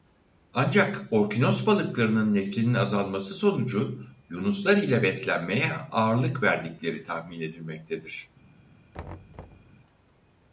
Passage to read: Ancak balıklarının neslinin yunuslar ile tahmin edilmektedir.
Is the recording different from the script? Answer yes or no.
yes